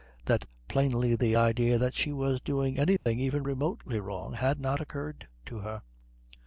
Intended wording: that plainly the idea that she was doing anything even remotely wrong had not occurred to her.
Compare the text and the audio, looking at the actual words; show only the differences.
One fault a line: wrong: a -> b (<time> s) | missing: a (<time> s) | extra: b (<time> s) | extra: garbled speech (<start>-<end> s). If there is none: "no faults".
no faults